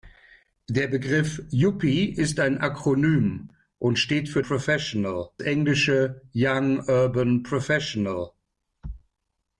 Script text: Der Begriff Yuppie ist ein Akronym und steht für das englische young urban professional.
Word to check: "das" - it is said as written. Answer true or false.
false